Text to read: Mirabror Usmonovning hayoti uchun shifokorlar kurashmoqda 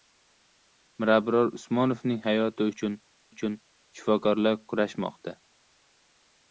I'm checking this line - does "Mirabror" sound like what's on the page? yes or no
yes